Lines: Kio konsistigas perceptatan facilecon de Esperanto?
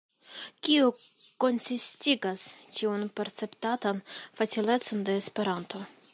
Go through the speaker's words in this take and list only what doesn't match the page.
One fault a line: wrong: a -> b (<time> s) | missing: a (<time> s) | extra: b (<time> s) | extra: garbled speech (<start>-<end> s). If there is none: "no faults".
extra: tiun (2.8 s)